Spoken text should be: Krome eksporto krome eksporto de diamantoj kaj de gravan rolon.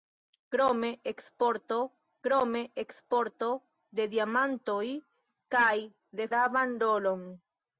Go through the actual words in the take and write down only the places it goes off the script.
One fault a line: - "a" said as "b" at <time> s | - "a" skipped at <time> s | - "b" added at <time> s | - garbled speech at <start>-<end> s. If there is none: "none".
none